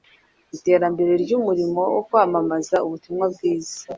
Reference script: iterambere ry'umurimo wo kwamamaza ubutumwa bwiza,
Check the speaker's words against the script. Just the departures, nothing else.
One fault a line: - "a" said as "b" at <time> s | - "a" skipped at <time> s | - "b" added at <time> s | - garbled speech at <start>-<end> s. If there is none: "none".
none